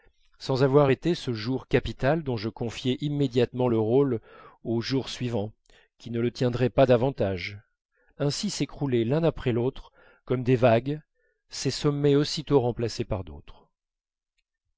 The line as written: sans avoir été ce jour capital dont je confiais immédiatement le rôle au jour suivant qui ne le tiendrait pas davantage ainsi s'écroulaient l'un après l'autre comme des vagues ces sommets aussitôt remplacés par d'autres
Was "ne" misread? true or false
false